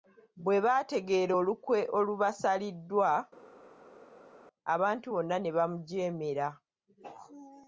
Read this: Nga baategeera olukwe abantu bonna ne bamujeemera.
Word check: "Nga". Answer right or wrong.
wrong